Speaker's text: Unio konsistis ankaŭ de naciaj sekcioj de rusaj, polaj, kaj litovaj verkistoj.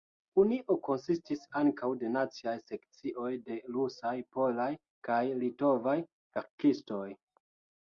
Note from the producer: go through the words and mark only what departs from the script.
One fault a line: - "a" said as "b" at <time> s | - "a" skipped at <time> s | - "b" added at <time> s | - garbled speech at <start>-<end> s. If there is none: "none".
none